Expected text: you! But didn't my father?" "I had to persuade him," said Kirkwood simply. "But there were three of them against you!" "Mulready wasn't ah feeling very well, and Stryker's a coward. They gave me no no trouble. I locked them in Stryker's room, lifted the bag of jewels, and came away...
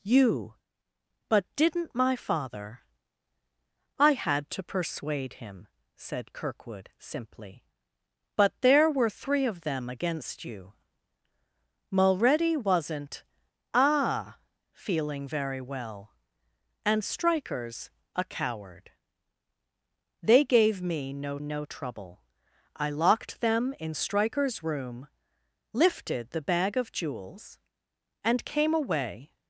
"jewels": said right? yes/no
yes